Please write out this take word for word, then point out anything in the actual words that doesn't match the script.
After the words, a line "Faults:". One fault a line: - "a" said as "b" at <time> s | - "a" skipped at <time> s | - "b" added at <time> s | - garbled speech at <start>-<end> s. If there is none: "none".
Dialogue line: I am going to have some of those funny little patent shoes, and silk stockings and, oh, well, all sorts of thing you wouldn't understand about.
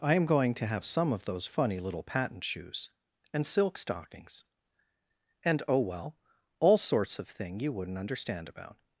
I am going to have some of those funny little patent shoes, and silk stockings and, oh, well, all sorts of thing you wouldn't understand about.
Faults:
none